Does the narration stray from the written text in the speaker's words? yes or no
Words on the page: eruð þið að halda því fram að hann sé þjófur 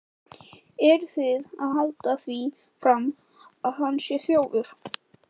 no